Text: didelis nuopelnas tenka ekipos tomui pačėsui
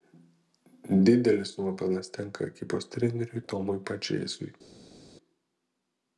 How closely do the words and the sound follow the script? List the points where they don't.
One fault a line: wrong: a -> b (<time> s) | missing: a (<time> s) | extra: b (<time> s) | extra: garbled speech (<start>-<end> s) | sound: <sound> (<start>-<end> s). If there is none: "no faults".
extra: treneriui (3.0 s)